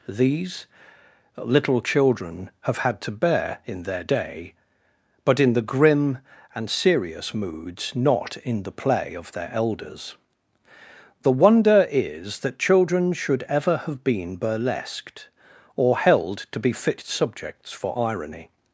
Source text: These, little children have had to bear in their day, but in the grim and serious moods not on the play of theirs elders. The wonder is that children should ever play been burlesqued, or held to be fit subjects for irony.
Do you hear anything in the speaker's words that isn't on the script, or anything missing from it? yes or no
yes